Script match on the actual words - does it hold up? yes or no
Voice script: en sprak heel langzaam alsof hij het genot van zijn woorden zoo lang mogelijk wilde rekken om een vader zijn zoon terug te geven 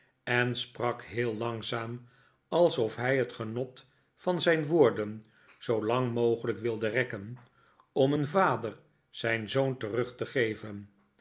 yes